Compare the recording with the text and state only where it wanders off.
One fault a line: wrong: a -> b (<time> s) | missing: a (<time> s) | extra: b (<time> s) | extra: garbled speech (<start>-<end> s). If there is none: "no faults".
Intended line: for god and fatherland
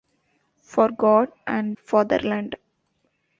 no faults